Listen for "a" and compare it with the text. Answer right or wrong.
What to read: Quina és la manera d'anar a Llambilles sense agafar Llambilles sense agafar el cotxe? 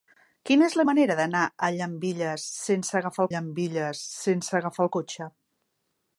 right